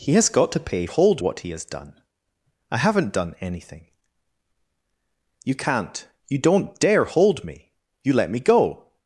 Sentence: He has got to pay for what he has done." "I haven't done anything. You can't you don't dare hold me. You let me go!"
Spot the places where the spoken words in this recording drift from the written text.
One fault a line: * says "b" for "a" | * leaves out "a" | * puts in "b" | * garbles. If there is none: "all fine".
* says "hold" for "for"